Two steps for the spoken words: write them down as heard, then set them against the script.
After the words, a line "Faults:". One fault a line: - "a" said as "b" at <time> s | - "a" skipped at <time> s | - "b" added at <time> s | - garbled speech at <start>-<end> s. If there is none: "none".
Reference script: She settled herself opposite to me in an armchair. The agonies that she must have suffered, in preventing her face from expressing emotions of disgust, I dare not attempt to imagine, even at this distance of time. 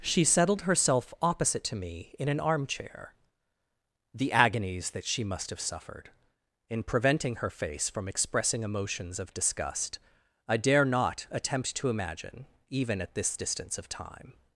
She settled herself opposite to me in an armchair. The agonies that she must have suffered, in preventing her face from expressing emotions of disgust, I dare not attempt to imagine, even at this distance of time.
Faults:
none